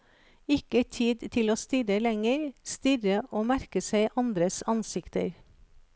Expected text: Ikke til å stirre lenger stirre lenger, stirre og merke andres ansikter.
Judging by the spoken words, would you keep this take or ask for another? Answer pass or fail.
fail